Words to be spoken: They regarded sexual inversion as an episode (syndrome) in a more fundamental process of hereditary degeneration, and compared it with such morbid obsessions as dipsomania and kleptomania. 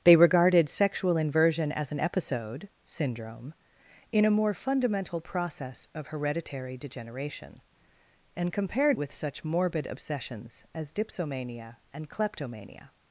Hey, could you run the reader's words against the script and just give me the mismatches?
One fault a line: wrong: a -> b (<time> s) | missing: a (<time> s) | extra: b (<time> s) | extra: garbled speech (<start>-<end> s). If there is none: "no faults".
missing: it (9.0 s)